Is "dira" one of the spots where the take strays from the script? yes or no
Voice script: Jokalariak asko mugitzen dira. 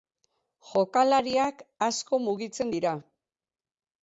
no